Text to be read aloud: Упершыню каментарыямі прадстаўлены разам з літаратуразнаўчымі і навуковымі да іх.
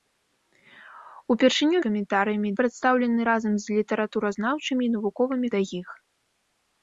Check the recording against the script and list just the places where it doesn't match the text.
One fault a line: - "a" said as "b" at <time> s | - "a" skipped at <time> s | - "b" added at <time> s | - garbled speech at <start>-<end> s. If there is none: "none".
none